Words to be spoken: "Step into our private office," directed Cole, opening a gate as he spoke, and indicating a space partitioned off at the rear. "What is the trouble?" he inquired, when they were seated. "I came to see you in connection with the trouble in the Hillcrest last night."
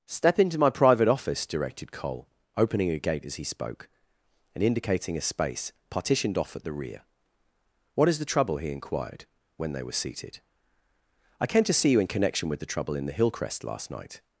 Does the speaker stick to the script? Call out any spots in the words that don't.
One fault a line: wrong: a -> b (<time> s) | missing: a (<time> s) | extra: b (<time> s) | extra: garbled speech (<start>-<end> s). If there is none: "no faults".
wrong: our -> my (0.6 s)